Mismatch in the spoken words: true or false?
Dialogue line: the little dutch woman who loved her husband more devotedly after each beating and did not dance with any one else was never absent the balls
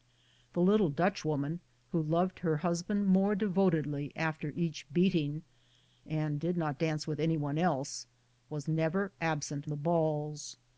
false